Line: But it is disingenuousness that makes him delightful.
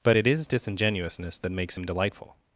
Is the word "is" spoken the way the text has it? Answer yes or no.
yes